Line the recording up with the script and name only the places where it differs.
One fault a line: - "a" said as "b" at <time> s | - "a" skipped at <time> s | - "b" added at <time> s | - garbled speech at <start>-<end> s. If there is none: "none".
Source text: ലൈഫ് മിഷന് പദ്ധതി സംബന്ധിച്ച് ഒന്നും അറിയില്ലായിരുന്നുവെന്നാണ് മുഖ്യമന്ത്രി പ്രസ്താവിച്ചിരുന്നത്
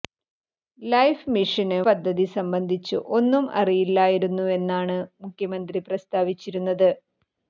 none